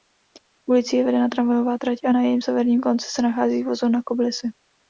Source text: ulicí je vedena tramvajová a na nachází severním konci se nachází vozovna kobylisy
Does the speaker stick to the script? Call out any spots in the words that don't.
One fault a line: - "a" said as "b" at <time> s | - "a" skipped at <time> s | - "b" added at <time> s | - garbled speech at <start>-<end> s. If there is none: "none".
- "trať" added at 1.8 s
- "nachází" said as "jejím" at 2.2 s